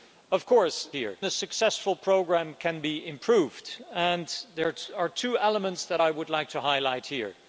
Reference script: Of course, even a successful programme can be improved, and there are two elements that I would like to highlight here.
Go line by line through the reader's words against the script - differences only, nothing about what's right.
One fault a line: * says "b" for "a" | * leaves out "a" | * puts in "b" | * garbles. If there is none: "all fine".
* says "here" for "even"